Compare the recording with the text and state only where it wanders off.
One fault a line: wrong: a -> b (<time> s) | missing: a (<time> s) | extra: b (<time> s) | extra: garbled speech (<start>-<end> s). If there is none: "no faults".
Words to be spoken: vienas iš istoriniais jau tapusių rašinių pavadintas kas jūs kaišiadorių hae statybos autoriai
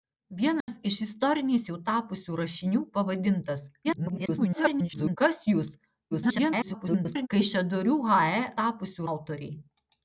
extra: garbled speech (3.8-5.2 s)
extra: garbled speech (6.1-7.3 s)
wrong: statybos -> tapusių (8.6 s)